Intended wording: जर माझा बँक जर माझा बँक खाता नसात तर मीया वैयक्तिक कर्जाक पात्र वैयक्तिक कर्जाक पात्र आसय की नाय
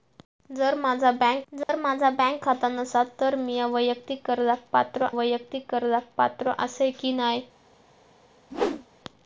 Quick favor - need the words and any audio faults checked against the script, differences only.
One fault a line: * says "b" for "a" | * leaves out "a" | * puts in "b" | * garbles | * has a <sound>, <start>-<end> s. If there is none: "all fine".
* has a dropout, 1.6-1.7 s
* has a whoosh, 8.5-8.9 s